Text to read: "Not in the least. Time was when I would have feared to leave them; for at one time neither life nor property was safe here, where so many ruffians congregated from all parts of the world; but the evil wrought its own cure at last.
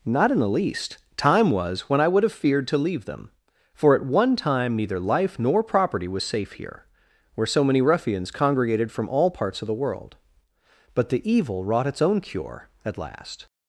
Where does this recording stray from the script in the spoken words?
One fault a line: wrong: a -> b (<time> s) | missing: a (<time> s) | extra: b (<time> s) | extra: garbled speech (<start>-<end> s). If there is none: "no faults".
no faults